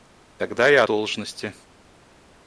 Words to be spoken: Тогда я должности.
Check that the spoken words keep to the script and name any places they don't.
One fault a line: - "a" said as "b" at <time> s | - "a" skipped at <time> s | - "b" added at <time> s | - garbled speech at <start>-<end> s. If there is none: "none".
none